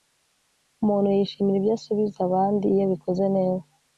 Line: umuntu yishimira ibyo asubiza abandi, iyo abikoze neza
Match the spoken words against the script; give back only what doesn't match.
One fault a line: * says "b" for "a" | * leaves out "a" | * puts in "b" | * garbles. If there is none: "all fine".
all fine